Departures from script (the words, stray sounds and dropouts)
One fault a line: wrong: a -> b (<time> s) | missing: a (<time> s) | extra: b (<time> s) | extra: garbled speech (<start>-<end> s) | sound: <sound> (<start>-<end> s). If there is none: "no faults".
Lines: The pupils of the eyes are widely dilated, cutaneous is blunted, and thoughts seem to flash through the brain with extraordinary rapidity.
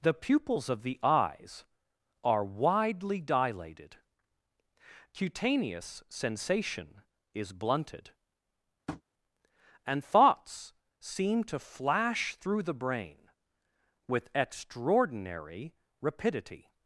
extra: sensation (6.1 s)
sound: tap (8.9-9.0 s)